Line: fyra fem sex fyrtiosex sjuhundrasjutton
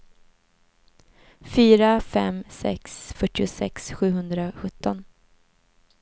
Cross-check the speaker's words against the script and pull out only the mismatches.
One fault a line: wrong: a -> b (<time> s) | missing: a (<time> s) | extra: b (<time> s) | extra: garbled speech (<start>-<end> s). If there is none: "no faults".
no faults